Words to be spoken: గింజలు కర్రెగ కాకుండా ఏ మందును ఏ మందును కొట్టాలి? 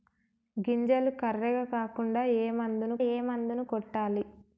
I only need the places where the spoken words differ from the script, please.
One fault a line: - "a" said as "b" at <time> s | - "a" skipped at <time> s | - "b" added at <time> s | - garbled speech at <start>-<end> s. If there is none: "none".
none